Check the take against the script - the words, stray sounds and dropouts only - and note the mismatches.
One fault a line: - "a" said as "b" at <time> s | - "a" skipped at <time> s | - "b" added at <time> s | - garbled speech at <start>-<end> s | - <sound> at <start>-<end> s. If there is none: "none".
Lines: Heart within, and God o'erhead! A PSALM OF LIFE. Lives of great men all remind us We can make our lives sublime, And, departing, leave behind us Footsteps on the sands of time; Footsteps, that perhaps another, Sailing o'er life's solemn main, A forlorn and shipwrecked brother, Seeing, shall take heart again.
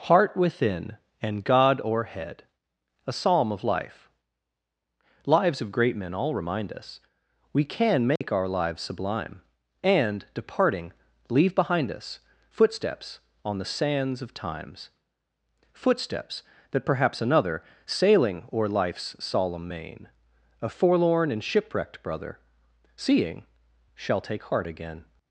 - dropout at 8.2-8.2 s
- "time" said as "times" at 14.3 s